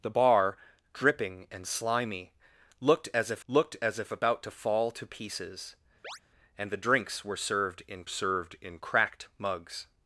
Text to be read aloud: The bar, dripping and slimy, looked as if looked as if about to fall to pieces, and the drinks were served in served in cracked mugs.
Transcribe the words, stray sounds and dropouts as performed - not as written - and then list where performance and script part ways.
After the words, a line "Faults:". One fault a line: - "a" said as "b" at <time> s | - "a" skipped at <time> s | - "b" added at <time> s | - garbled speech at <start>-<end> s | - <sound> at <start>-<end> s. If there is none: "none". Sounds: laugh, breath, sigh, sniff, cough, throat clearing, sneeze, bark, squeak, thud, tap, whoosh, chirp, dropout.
The bar, dripping and slimy, looked as if looked as if about to fall to pieces, and the drinks were served in served in cracked mugs.
Faults:
- chirp at 6.0-6.2 s